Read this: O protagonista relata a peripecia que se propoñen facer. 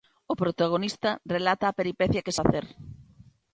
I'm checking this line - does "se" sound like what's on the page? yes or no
no